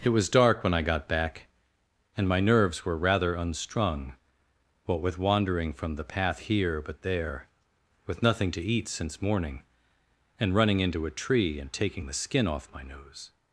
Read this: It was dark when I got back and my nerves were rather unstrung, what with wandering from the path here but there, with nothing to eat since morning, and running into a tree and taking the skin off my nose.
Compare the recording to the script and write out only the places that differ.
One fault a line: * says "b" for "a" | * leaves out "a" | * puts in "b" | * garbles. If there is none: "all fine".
all fine